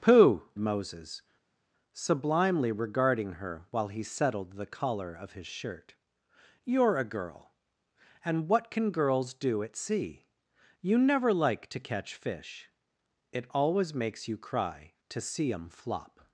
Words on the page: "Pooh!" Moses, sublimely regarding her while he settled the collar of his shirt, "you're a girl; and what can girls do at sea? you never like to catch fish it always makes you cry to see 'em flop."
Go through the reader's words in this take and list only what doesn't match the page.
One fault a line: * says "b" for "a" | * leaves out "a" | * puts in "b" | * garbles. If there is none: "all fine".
all fine